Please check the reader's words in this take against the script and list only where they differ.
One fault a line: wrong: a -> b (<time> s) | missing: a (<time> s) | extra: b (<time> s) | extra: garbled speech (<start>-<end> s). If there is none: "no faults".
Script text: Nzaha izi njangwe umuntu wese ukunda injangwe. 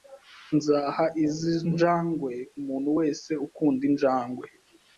no faults